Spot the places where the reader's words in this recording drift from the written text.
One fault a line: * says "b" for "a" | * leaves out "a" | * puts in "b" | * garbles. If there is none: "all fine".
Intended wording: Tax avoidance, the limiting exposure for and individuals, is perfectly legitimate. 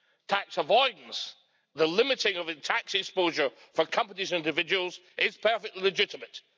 * puts in "of tax"
* puts in "companies"